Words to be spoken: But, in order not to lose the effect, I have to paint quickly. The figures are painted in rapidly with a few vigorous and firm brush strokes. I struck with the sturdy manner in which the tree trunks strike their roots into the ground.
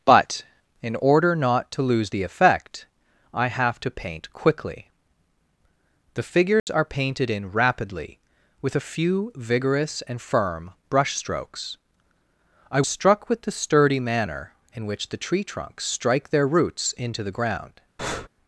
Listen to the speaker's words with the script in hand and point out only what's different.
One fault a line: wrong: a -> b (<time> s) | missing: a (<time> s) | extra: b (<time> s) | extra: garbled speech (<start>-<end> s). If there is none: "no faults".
no faults